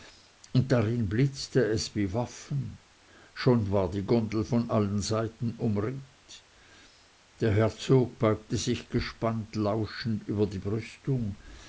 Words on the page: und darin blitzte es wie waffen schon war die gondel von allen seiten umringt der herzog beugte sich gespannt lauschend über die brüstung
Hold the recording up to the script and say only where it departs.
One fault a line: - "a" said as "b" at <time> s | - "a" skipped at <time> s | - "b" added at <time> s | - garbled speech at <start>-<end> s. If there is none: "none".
none